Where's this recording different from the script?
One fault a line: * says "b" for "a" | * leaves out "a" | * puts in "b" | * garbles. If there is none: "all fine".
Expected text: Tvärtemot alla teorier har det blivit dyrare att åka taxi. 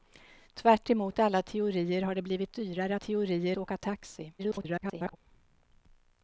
* says "teorier" for "att"
* garbles